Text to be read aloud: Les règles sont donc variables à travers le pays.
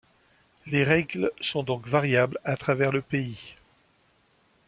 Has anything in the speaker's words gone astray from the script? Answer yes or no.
no